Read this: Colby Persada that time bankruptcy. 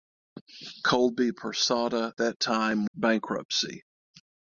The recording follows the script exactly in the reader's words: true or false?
true